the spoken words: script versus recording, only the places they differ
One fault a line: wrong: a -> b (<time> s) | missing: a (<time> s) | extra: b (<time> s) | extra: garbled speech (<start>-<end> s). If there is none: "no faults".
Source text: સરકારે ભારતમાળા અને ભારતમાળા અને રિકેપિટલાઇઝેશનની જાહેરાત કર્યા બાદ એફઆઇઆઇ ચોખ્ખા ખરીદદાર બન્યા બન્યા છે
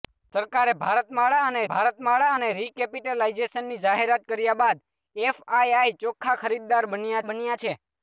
no faults